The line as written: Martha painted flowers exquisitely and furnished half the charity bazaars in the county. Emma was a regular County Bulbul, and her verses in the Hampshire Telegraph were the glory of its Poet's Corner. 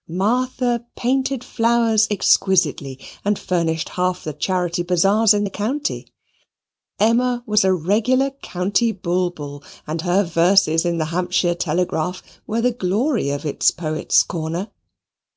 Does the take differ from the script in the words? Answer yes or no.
no